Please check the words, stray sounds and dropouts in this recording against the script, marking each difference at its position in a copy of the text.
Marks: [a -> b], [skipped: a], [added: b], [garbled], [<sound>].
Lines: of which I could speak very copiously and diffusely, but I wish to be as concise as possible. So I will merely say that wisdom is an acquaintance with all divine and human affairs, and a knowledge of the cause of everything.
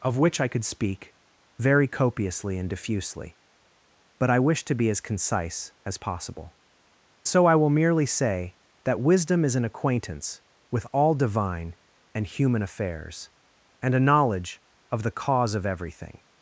of which I could speak very copiously and diffusely, but I wish to be as concise as possible. So I will merely say that wisdom is an acquaintance with all divine and human affairs, and a knowledge of the cause of everything.